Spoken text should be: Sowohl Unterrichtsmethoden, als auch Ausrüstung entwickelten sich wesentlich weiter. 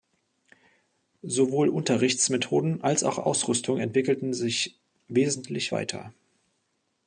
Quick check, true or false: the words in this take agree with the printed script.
true